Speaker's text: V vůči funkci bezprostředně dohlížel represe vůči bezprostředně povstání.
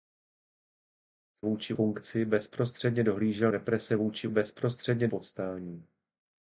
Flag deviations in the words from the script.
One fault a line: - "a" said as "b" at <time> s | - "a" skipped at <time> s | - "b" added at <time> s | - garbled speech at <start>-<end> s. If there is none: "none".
none